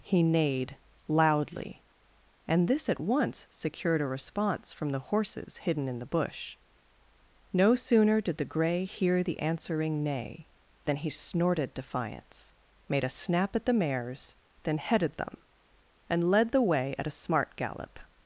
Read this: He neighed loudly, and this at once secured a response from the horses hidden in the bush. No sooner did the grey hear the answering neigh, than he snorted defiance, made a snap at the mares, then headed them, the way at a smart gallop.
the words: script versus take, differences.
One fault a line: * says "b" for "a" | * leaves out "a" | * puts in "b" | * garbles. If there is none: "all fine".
* puts in "and led"